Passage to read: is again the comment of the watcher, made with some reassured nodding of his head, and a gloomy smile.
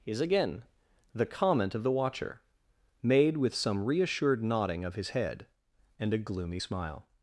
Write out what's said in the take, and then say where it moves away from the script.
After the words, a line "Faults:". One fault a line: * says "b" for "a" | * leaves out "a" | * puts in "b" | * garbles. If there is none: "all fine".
is again the comment of the watcher, made with some reassured nodding of his head, and a gloomy smile.
Faults:
all fine